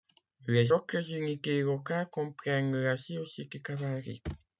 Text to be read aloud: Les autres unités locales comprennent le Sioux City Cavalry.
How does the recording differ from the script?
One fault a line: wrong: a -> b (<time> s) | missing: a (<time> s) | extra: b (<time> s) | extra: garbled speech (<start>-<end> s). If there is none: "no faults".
wrong: le -> la (2.7 s)